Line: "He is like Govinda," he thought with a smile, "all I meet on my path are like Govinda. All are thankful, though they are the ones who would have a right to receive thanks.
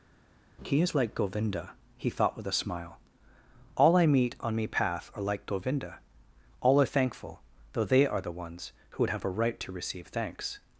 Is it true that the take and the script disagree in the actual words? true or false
true